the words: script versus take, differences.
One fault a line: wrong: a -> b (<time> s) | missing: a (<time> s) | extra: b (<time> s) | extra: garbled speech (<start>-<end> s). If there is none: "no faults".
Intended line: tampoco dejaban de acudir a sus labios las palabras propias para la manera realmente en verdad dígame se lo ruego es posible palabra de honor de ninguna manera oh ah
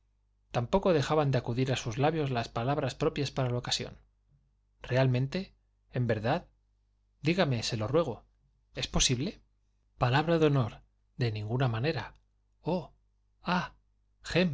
wrong: manera -> ocasión (3.6 s)